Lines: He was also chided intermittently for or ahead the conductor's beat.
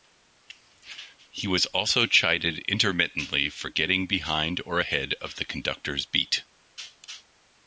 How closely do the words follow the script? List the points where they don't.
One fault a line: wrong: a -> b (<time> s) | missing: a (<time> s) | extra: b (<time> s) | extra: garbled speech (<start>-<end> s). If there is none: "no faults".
extra: getting behind (3.7 s)
extra: of (5.1 s)